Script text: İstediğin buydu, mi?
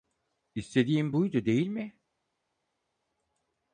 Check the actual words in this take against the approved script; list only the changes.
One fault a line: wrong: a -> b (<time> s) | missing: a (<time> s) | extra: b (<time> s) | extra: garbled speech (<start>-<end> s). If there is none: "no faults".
extra: değil (1.5 s)